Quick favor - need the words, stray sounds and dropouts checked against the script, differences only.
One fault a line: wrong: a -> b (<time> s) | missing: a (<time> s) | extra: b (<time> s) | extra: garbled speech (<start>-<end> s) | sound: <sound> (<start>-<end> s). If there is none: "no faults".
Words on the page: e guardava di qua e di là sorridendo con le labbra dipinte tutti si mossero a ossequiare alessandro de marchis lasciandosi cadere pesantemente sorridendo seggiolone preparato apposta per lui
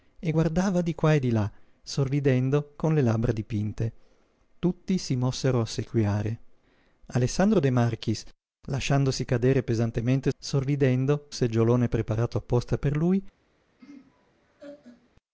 sound: laugh (13.8-15.1 s)